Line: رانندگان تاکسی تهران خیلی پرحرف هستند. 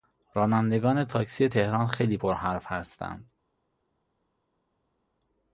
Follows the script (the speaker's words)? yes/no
yes